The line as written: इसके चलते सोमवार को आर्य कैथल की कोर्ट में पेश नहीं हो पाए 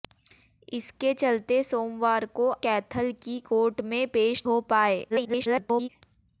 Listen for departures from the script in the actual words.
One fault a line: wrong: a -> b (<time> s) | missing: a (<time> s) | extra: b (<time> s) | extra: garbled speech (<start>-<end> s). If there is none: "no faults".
missing: आर्य (2.5 s)
missing: नहीं (4.4 s)
extra: garbled speech (5.1-5.9 s)